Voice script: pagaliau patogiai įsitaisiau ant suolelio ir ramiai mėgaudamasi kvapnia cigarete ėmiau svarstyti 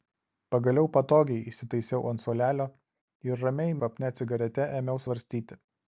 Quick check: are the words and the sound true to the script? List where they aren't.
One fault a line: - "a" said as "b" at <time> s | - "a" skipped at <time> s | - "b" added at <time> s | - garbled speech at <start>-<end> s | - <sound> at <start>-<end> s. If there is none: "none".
- "mėgaudamasi" skipped at 3.8 s